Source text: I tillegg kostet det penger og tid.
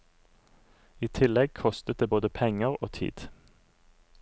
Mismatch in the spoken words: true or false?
true